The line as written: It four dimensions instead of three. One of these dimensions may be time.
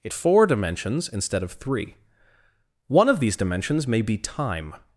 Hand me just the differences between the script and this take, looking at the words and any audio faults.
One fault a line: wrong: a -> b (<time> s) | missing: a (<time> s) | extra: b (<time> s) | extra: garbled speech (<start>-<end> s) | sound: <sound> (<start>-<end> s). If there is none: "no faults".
no faults